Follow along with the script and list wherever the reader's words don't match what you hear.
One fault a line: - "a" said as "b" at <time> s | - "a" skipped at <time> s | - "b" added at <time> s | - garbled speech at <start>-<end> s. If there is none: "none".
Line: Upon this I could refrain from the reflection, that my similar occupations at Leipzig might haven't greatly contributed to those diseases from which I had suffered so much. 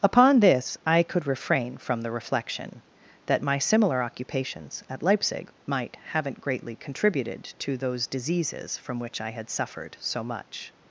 none